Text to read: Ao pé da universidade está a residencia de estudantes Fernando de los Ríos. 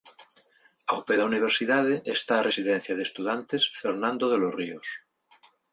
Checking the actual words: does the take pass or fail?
pass